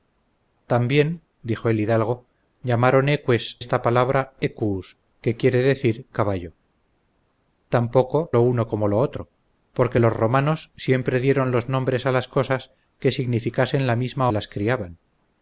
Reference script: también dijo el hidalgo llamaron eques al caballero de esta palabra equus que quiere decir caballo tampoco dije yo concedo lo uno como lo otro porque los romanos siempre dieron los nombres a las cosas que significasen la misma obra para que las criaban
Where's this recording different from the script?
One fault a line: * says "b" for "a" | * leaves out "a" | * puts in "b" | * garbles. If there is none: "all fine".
* leaves out "al caballero de"
* leaves out "dije yo concedo"
* leaves out "obra para que"